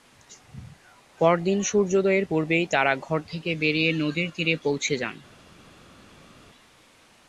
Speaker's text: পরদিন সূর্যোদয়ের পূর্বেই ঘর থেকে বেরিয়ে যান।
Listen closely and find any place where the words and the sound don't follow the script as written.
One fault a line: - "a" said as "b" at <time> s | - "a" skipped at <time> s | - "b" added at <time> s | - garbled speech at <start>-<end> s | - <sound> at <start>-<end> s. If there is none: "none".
- "তারা" added at 2.7 s
- "নদীর তীরে পৌঁছে" added at 3.9 s